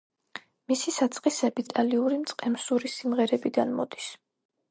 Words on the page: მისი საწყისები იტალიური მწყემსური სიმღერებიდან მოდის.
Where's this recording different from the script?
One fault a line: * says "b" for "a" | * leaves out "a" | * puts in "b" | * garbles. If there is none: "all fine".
all fine